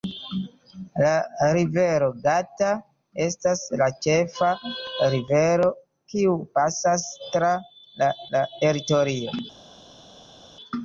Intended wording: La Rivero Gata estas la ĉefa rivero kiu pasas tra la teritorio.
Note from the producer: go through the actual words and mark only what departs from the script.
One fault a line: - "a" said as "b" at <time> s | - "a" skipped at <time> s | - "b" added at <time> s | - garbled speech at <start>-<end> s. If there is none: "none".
- "la" added at 8.4 s